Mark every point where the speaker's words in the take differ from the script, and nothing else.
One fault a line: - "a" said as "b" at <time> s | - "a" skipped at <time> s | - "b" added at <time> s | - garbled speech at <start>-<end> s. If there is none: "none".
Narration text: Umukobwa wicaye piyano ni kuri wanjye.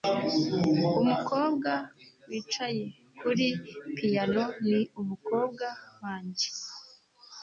- "kuri" added at 3.2 s
- "kuri" said as "umukobwa" at 5.0 s